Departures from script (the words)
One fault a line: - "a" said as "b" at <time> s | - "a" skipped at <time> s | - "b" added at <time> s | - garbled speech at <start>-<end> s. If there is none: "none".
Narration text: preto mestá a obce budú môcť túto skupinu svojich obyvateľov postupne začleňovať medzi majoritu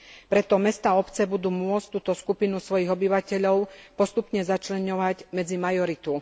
none